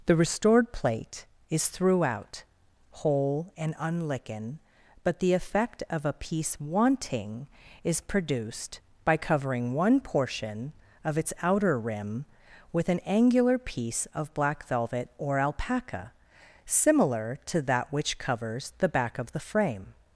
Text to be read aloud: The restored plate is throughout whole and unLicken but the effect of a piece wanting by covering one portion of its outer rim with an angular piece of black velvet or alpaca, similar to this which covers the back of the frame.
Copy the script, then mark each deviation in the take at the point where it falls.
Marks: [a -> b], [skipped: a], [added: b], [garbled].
The restored plate is throughout whole and unLicken but the effect of a piece wanting [added: is produced] by covering one portion of its outer rim with an angular piece of black velvet or alpaca, similar to [this -> that] which covers the back of the frame.